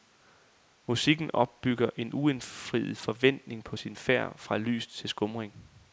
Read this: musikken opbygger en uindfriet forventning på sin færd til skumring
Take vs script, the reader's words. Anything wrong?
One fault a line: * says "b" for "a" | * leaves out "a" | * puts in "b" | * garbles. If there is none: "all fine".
* puts in "fra lys"